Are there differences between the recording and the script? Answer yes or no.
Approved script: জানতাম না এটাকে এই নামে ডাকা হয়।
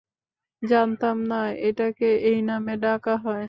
no